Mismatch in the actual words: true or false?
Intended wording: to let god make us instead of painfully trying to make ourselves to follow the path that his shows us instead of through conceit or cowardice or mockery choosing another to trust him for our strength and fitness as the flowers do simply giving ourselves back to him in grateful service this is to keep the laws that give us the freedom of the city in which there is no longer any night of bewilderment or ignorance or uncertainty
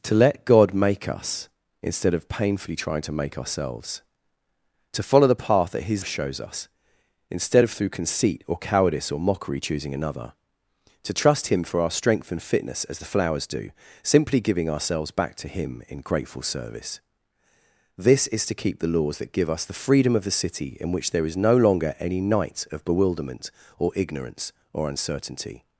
false